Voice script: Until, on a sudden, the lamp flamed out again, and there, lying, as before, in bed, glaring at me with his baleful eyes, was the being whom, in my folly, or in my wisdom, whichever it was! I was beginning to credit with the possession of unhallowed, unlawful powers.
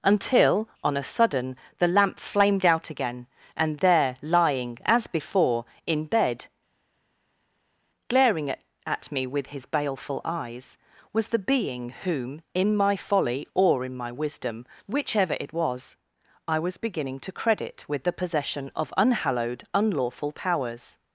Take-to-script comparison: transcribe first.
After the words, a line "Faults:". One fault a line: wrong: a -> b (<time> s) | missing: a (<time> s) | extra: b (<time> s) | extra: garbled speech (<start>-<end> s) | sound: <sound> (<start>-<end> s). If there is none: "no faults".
Until, on a sudden, the lamp flamed out again, and there, lying, as before, in bed, glaring at at me with his baleful eyes, was the being whom, in my folly, or in my wisdom, whichever it was! I was beginning to credit with the possession of unhallowed, unlawful powers.
Faults:
extra: at (8.9 s)